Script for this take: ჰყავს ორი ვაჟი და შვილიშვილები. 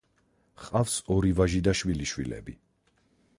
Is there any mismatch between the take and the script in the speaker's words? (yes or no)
no